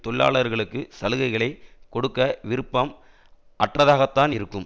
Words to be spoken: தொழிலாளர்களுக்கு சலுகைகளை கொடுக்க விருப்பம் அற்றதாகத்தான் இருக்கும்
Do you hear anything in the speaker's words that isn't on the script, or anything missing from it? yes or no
no